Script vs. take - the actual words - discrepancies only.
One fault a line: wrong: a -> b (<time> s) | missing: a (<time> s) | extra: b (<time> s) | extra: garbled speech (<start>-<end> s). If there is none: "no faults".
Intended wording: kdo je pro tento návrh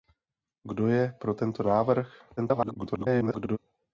extra: garbled speech (2.4-3.6 s)